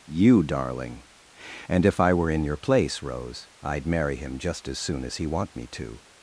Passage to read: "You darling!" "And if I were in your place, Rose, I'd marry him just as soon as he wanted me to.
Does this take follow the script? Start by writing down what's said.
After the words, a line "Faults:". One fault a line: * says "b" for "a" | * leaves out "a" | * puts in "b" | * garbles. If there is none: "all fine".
"You darling!" "And if I were in your place, Rose, I'd marry him just as soon as he want me to.
Faults:
* says "want" for "wanted"